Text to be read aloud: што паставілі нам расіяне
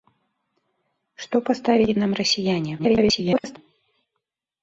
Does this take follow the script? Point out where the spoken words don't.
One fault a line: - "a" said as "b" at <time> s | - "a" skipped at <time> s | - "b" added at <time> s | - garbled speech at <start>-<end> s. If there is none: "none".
- garbled speech at 2.8-3.6 s